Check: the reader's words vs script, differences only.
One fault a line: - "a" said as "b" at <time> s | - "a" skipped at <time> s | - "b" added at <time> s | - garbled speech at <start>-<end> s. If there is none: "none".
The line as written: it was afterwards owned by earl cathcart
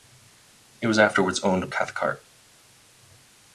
- "by earl" skipped at 1.7 s